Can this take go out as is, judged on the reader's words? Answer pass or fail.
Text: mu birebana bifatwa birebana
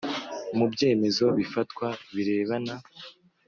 fail